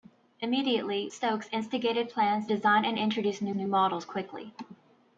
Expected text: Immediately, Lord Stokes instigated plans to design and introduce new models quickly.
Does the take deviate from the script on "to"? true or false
true